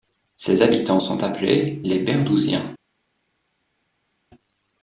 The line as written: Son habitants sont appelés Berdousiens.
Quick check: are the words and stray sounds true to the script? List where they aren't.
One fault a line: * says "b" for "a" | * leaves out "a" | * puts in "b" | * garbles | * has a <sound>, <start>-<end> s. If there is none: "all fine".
* says "Ses" for "Son"
* puts in "les"